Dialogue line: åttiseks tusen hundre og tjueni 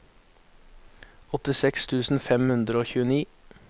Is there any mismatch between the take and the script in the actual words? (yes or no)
yes